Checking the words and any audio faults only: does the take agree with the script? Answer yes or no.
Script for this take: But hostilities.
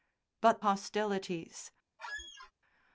no